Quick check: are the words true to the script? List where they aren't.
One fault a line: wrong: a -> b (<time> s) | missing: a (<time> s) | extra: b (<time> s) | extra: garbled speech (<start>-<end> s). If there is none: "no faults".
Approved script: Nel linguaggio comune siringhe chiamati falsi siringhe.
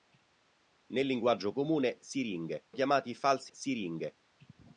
no faults